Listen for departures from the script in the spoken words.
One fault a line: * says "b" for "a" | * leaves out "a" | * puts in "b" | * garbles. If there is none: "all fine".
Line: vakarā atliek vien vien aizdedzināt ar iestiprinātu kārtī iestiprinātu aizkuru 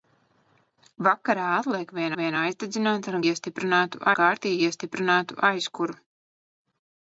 all fine